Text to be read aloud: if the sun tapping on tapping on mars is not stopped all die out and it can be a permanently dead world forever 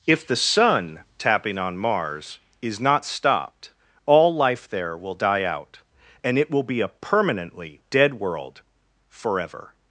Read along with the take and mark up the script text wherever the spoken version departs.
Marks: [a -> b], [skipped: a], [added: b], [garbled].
if the sun tapping on [skipped: tapping on] mars is not stopped all [added: life there will] die out and it [can -> will] be a permanently dead world forever